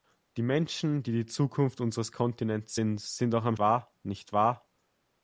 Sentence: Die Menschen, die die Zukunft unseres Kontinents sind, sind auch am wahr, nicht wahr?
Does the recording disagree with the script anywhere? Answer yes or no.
no